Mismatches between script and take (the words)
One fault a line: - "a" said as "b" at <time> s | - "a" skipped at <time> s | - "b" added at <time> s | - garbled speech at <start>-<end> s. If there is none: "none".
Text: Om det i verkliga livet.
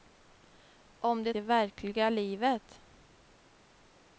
none